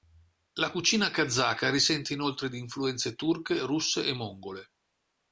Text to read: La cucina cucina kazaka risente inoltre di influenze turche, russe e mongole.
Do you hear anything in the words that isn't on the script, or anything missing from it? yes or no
yes